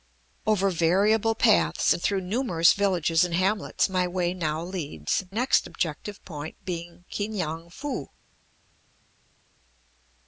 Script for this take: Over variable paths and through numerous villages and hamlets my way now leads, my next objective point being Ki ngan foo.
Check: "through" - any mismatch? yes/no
no